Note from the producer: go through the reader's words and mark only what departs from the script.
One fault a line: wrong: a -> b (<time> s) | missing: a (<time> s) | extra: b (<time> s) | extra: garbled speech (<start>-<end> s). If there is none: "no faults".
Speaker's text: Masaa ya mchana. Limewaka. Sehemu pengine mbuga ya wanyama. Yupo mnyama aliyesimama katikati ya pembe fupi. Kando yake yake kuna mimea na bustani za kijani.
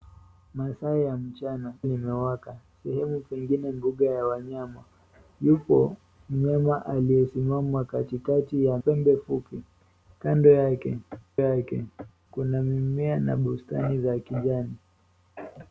no faults